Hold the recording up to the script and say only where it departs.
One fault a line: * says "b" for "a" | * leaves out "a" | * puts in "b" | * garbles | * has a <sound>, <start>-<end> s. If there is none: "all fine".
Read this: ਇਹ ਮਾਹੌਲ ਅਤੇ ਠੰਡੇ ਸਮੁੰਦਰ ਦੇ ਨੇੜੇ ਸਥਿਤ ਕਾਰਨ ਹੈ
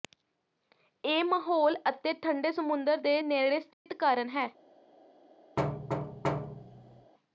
* has a dropout, 3.7-3.9 s
* has a thud, 5.6-7.1 s